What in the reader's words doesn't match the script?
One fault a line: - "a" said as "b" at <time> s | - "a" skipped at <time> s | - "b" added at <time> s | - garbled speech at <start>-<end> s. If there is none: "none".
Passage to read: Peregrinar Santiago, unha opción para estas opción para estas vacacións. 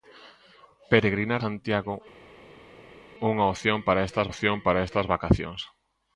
none